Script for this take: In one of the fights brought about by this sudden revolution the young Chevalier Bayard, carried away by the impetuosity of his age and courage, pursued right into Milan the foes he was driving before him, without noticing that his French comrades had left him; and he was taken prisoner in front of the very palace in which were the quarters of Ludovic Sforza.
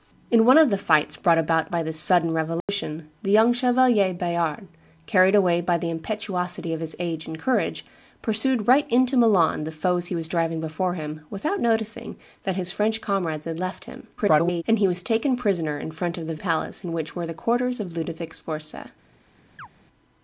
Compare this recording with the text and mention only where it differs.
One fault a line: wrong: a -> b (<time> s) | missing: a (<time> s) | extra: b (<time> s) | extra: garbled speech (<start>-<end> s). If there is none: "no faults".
extra: garbled speech (14.2-14.6 s)
missing: very (16.4 s)